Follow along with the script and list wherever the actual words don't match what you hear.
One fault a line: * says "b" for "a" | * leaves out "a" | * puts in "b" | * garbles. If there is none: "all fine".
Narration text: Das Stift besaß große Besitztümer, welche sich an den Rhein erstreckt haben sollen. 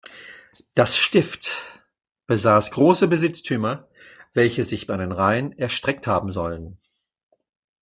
all fine